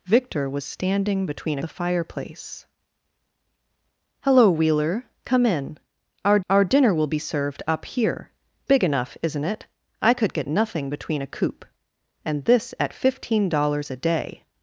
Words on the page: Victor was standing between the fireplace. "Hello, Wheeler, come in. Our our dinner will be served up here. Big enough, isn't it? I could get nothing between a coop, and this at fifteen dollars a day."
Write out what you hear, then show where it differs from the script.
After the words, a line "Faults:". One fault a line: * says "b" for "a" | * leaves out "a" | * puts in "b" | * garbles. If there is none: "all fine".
Victor was standing between the fireplace. "Hello, Wheeler, come in. Our our dinner will be served up here. Big enough, isn't it? I could get nothing between a coop, and this at fifteen dollars a day."
Faults:
all fine